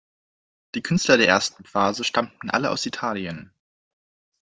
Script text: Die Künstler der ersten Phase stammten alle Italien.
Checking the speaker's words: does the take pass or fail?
fail